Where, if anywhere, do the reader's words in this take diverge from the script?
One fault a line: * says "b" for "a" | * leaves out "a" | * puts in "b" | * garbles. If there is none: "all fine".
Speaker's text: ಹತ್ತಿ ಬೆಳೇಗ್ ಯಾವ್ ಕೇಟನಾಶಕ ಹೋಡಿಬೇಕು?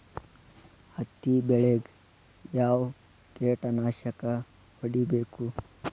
all fine